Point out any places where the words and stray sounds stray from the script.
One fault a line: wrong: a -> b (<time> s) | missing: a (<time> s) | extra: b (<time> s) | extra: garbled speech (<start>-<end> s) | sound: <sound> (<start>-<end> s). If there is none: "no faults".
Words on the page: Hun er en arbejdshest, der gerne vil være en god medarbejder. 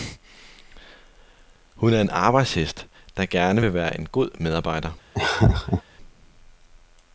sound: laugh (5.1-5.8 s)